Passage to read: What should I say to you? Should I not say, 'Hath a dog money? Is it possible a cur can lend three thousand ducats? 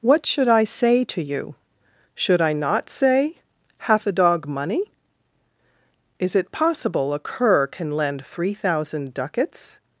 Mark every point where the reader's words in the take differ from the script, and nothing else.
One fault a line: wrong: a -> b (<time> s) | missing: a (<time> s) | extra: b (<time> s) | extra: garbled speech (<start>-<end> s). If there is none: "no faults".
no faults